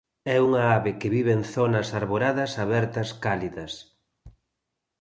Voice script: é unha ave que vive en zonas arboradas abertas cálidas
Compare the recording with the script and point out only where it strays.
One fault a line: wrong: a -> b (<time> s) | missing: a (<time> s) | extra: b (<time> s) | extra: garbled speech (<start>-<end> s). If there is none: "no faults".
no faults